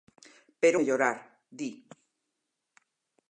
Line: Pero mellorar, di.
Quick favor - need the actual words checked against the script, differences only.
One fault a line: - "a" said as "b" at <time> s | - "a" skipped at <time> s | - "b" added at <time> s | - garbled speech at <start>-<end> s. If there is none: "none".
none